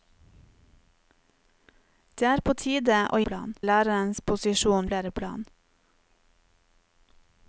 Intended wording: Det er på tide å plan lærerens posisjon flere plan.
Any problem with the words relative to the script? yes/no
no